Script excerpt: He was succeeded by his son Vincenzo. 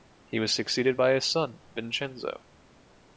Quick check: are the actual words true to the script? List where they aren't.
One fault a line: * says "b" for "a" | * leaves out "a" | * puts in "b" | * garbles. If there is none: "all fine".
all fine